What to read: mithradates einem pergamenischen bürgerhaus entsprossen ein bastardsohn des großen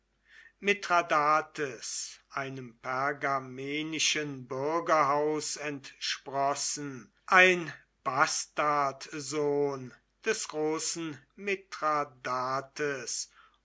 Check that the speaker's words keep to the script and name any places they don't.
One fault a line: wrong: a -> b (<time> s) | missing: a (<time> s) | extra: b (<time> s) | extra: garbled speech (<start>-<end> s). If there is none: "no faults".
no faults